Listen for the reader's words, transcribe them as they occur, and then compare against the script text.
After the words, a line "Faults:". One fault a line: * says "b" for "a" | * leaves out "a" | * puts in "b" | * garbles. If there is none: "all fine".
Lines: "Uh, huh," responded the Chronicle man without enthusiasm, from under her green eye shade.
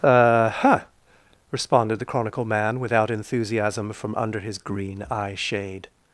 "Uh, huh," responded the Chronicle man without enthusiasm, from under his green eye shade.
Faults:
* says "his" for "her"